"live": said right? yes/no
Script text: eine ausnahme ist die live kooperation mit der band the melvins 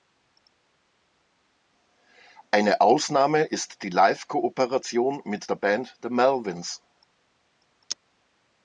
yes